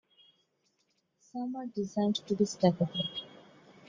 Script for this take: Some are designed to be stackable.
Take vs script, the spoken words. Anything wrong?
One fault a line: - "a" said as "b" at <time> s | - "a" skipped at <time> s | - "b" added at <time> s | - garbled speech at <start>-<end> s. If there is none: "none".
none